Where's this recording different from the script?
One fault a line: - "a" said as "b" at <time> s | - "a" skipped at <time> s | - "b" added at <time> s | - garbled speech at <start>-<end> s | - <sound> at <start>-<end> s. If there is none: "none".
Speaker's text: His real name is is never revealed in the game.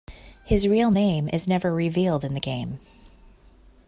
- "is" skipped at 1.5 s